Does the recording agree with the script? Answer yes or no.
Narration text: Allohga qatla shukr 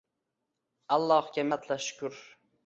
yes